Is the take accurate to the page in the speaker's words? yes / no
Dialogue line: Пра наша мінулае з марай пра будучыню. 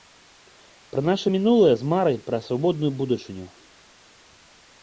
no